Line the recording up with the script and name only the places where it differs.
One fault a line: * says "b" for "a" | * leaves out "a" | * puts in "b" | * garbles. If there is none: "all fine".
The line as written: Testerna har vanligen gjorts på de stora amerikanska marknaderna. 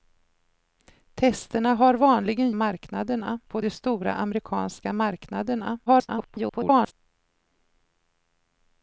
* says "marknaderna" for "gjorts"
* garbles